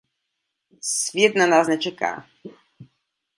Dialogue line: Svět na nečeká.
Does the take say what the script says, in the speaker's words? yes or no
no